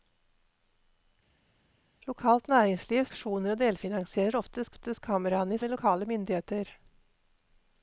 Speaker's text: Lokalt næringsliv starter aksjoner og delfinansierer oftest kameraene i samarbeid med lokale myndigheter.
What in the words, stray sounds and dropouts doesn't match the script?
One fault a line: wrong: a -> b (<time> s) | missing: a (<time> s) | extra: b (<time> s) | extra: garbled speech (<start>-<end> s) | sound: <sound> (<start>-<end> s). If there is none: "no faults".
missing: starter (3.0 s)
extra: oftest (4.7 s)
missing: samarbeid (5.6 s)